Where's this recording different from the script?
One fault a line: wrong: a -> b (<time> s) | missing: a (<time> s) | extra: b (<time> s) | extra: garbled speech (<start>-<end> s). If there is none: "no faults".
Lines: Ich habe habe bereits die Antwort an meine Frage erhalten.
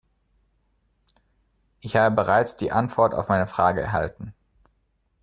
missing: habe (2.1 s)
wrong: an -> auf (3.1 s)